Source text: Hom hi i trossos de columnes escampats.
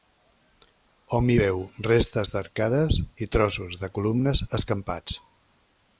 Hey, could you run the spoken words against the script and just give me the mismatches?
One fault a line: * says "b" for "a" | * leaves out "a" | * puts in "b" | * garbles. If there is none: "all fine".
* puts in "veu restes d'arcades"